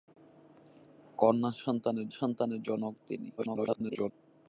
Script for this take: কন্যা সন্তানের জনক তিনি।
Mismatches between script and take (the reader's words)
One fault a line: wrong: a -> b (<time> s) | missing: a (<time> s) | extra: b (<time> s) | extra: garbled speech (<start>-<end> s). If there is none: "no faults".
extra: সন্তানের (2.2 s)
extra: garbled speech (3.4-4.1 s)